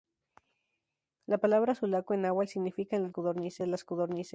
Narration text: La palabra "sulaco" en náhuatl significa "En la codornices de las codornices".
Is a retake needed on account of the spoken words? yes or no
no